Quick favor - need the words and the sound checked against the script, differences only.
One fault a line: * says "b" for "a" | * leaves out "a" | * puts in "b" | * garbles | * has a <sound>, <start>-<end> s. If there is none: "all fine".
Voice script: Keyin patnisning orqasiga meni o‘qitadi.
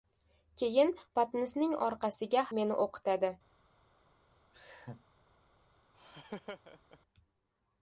* has a laugh, 4.5-5.1 s
* has a laugh, 5.9-7.0 s